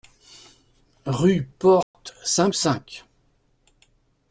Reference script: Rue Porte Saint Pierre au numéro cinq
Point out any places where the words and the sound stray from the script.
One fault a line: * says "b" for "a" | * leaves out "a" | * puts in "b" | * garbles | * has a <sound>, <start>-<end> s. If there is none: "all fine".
* has a dropout, 1.8-1.9 s
* leaves out "Pierre au numéro"